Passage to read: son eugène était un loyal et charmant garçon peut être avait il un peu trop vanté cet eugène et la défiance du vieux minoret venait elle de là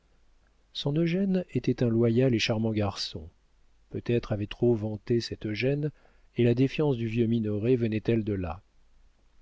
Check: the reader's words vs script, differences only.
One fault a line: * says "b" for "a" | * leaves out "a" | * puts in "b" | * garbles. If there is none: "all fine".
* leaves out "il un peu"